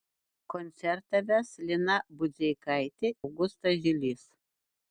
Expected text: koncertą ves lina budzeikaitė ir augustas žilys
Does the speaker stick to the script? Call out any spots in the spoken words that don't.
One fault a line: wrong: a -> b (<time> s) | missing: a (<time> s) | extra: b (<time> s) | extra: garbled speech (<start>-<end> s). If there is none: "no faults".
missing: ir (3.1 s)